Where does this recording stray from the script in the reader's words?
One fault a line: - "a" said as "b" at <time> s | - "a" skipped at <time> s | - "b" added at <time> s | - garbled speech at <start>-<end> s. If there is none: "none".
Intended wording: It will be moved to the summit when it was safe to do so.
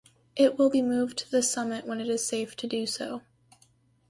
- "was" said as "is" at 2.1 s